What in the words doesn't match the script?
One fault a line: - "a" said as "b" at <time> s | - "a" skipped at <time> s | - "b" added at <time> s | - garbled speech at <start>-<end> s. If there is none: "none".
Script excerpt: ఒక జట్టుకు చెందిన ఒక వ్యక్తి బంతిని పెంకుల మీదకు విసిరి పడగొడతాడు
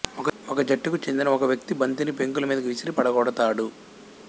none